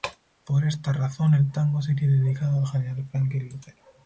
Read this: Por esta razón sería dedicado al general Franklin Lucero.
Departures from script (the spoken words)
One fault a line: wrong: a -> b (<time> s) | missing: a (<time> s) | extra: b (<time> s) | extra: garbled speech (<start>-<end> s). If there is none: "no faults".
extra: el tango (1.4 s)